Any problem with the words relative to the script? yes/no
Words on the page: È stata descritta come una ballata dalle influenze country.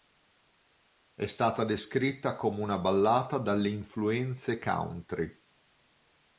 no